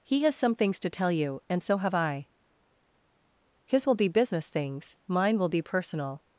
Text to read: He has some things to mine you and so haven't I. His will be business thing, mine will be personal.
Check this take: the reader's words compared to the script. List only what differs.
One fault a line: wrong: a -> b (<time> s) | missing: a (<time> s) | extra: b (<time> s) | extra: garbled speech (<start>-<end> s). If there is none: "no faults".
wrong: mine -> tell (0.9 s)
wrong: haven't -> have (1.8 s)
wrong: thing -> things (4.5 s)